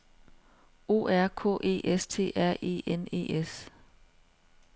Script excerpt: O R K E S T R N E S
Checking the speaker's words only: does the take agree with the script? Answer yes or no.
no